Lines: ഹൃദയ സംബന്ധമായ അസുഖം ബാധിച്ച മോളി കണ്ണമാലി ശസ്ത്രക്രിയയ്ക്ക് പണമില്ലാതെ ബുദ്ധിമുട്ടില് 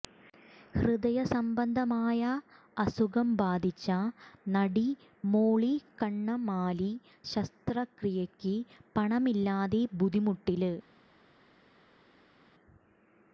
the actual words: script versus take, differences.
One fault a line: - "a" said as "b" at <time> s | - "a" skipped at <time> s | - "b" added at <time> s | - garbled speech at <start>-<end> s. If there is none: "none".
- "നടി" added at 4.5 s